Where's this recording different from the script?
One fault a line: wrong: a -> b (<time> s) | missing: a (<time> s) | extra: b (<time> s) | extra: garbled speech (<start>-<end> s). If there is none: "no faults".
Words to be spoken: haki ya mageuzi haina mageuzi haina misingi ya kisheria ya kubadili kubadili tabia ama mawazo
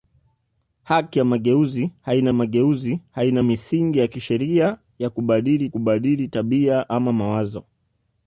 no faults